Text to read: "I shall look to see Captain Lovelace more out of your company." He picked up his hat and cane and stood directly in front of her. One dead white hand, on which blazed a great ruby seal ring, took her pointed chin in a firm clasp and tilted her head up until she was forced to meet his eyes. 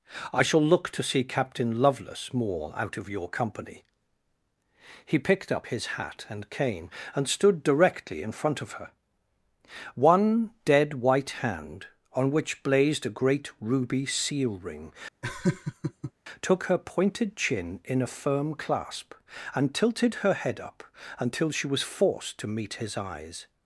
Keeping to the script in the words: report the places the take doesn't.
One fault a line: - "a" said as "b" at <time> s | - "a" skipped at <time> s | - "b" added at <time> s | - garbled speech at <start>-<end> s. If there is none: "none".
none